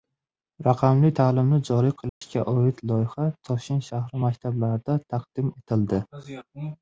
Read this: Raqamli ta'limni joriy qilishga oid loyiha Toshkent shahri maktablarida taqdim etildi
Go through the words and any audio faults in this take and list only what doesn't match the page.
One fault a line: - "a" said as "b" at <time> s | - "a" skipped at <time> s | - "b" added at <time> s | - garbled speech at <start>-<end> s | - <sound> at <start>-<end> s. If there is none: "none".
- dropout at 2.1-2.2 s